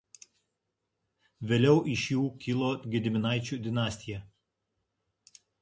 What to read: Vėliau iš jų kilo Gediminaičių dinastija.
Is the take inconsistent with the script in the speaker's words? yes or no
no